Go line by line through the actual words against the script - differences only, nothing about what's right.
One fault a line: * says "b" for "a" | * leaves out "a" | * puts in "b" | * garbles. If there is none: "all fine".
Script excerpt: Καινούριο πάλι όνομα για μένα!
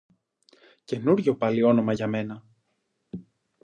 all fine